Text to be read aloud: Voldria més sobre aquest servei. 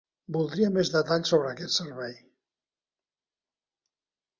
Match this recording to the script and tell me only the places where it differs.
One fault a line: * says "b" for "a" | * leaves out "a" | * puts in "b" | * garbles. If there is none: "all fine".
* puts in "detalls"